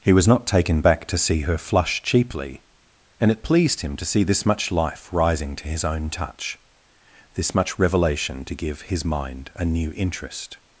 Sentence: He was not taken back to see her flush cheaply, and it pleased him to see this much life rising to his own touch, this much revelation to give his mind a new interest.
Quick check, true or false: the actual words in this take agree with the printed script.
true